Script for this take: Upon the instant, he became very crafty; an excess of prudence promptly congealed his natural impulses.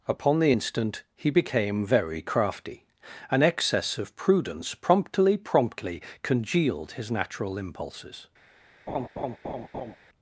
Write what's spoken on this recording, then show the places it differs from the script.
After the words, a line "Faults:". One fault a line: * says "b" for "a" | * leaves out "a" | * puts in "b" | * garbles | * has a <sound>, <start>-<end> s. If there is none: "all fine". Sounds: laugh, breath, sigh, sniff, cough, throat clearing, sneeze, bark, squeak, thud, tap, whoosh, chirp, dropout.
Upon the instant, he became very crafty; an excess of prudence promptly promptly congealed his natural impulses.
Faults:
* puts in "promptly"
* has a laugh, 8.9-10.0 s